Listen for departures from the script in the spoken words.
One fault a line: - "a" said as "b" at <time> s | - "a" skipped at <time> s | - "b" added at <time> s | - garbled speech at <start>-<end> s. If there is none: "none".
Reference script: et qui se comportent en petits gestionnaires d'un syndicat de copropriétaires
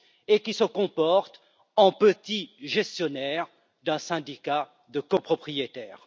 none